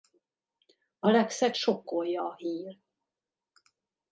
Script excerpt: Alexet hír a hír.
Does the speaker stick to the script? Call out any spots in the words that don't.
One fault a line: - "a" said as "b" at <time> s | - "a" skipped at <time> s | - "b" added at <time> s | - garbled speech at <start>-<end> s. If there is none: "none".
- "hír" said as "sokkolja" at 1.5 s